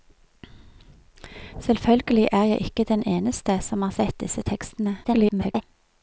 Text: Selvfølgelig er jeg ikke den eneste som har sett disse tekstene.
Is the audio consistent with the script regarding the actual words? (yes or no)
no